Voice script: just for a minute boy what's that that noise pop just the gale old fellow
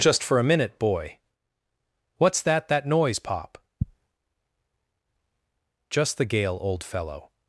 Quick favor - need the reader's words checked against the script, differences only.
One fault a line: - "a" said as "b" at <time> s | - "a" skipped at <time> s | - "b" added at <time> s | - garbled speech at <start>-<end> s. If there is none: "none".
none